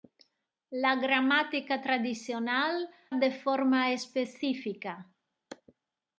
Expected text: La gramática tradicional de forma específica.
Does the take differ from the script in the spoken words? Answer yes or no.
no